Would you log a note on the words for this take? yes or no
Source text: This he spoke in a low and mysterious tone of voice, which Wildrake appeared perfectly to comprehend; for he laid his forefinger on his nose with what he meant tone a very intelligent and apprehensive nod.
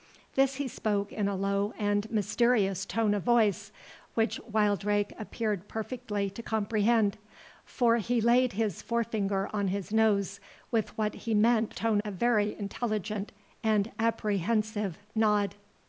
no